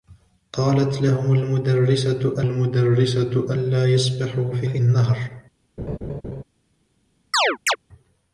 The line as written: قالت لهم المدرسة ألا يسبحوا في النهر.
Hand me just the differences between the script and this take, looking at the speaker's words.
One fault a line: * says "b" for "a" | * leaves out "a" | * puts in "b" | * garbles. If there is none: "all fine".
* puts in "المدرسة"
* puts in "في"